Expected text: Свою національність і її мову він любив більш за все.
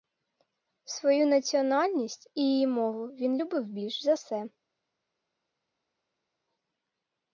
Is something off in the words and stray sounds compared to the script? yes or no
no